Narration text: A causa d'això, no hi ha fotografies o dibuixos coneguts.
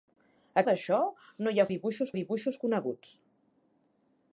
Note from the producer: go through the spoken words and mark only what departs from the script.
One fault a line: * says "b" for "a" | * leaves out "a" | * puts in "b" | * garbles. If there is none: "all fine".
* leaves out "causa"
* says "dibuixos" for "fotografies"